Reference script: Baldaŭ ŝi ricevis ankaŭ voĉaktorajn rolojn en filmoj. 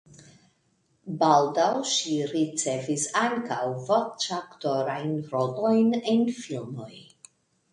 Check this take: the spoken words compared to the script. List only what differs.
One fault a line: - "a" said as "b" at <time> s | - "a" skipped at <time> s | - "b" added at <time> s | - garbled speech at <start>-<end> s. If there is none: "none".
none